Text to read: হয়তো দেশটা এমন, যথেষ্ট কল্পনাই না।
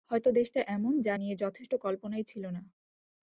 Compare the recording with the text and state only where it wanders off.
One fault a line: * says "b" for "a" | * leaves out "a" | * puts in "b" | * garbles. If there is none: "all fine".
* puts in "যা নিয়ে"
* puts in "ছিল"